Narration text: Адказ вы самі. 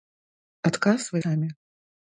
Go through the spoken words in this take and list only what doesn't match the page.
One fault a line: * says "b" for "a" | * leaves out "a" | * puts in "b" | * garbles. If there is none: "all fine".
all fine